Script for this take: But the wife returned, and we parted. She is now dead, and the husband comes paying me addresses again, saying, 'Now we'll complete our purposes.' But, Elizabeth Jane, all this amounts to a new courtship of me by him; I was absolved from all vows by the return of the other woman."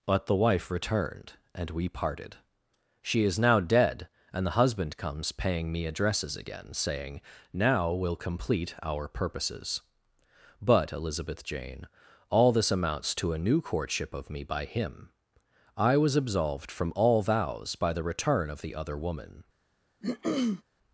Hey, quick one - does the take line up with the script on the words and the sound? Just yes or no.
no